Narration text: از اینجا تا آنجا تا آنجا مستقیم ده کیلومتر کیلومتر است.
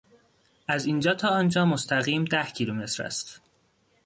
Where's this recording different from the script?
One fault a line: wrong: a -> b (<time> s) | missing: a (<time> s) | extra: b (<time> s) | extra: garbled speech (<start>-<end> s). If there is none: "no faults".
missing: تا آنجا (1.6 s)
missing: کیلومتر (3.0 s)